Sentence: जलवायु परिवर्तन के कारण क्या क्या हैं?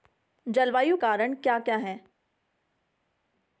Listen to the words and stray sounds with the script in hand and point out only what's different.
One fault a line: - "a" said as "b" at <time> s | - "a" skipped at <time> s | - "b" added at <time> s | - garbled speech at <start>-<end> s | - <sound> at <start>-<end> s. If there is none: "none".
- "परिवर्तन के" skipped at 1.0 s